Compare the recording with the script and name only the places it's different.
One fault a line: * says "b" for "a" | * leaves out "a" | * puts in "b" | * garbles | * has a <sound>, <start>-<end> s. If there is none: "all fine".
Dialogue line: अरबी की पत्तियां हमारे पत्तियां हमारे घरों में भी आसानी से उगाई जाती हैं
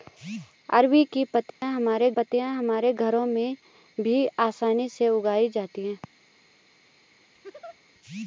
* has a dropout, 1.5-1.6 s
* has a laugh, 7.3-7.8 s